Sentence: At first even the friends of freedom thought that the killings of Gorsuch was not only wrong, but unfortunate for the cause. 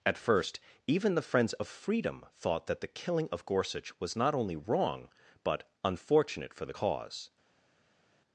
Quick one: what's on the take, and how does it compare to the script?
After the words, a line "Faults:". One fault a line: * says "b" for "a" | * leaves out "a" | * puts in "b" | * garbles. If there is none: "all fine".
At first even the friends of freedom thought that the killing of Gorsuch was not only wrong, but unfortunate for the cause.
Faults:
* says "killing" for "killings"